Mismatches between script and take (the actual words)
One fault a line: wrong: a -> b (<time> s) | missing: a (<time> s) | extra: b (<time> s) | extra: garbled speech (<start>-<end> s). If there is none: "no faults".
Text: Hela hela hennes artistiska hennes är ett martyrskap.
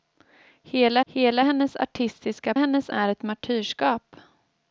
no faults